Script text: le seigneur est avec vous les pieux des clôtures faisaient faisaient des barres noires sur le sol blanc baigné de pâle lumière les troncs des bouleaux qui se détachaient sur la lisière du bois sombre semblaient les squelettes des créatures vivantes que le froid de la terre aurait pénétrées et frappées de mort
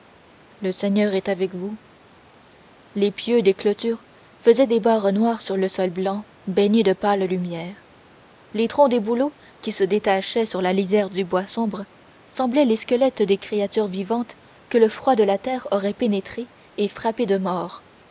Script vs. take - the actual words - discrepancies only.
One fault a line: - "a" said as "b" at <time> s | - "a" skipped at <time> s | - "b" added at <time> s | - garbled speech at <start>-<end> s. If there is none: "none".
- "faisaient" skipped at 4.7 s